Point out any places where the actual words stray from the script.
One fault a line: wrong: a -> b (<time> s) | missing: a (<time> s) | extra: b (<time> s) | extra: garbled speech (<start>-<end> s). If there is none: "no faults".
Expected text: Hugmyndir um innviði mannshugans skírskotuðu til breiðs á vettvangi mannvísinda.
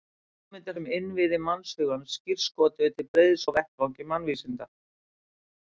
no faults